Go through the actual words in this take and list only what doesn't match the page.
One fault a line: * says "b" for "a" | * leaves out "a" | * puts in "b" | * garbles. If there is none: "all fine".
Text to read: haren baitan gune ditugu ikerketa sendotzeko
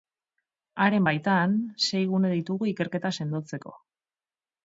* puts in "sei"